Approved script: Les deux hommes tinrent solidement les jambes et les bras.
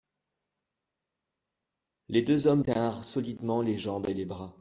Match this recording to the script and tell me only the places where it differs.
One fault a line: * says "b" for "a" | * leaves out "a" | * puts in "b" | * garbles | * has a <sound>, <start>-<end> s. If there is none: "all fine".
all fine